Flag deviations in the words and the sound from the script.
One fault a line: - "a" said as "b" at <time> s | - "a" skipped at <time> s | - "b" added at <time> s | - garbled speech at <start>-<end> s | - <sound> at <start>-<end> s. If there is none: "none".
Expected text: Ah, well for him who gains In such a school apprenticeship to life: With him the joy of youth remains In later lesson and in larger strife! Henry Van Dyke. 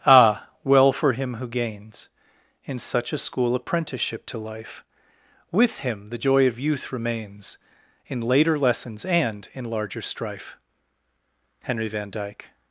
- "lesson" said as "lessons" at 8.6 s